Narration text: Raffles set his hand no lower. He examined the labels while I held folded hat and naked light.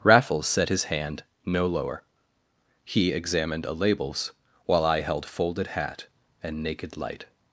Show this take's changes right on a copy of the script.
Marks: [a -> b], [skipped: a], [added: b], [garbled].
Raffles set his hand no lower. He examined [the -> a] labels while I held folded hat and naked light.